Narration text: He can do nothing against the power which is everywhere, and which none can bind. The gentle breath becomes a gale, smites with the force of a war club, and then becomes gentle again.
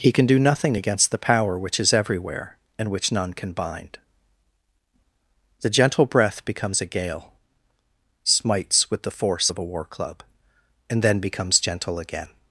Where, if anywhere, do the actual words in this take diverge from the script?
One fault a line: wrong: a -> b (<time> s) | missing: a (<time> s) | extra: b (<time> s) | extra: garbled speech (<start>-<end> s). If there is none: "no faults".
no faults